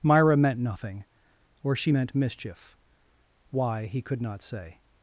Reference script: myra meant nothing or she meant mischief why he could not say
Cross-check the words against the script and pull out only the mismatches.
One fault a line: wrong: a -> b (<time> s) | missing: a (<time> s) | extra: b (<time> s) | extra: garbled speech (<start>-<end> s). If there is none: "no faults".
no faults